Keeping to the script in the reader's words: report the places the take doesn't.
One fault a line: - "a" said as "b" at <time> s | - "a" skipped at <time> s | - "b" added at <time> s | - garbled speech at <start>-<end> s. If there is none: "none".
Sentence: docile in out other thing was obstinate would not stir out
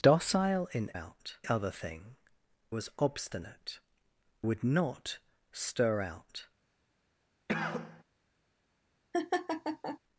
none